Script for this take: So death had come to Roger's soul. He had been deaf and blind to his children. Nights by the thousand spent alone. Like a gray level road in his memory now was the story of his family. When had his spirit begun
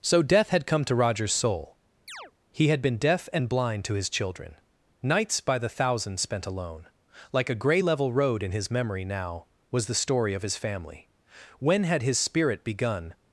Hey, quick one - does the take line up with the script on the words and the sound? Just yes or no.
no